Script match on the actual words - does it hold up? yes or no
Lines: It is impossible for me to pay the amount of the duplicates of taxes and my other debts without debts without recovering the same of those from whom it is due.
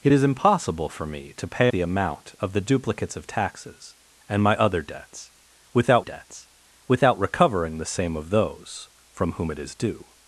yes